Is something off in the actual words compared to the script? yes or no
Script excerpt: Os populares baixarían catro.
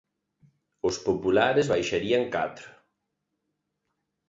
no